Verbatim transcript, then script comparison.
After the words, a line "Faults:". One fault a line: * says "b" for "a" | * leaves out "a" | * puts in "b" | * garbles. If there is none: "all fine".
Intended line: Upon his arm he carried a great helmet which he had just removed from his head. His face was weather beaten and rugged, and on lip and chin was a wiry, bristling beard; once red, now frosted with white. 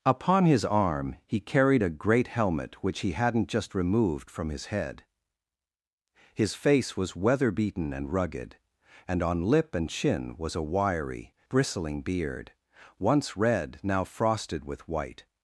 Upon his arm he carried a great helmet which he hadn't just removed from his head. His face was weather beaten and rugged, and on lip and chin was a wiry, bristling beard; once red, now frosted with white.
Faults:
* says "hadn't" for "had"